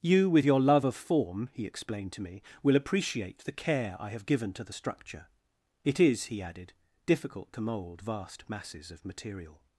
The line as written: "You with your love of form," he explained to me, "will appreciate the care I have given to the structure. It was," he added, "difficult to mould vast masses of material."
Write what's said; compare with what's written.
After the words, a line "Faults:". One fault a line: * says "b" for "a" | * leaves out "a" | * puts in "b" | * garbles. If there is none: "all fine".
"You with your love of form," he explained to me, "will appreciate the care I have given to the structure. It is," he added, "difficult to mould vast masses of material."
Faults:
* says "is" for "was"